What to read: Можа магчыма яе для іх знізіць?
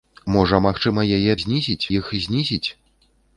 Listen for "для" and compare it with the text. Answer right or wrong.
wrong